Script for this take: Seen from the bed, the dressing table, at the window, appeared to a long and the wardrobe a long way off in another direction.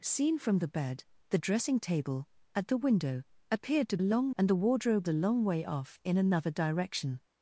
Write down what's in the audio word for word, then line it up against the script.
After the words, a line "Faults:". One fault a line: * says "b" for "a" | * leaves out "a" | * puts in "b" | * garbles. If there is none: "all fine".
Seen from the bed, the dressing table, at the window, appeared to a long and the wardrobe a long way off in another direction.
Faults:
all fine